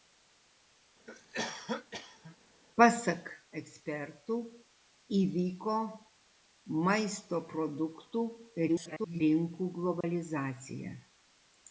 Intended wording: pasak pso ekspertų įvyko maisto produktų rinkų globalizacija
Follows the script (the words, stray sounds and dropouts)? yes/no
no